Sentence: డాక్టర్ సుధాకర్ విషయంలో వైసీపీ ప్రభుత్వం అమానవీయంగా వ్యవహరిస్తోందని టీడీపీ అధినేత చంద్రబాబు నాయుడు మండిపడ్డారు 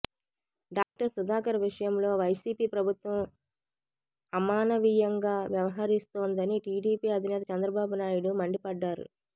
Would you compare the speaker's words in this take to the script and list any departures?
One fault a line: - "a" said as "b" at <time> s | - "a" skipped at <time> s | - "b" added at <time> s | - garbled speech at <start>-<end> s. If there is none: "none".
none